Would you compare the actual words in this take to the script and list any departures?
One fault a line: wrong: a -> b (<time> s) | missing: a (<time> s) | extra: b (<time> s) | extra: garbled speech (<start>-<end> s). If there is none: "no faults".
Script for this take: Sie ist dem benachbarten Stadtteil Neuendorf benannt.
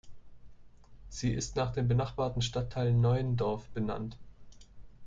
extra: nach (1.6 s)